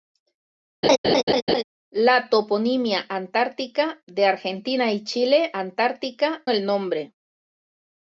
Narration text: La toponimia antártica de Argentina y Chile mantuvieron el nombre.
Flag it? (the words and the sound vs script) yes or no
yes